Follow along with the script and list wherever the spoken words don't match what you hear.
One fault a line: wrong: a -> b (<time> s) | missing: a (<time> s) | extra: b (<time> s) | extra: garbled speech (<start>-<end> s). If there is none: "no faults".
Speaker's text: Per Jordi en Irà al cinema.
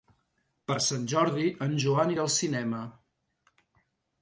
extra: Sant (0.8 s)
extra: Joan (1.9 s)